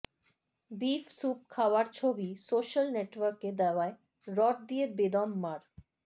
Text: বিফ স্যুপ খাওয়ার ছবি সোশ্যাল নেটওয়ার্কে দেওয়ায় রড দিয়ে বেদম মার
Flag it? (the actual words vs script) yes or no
no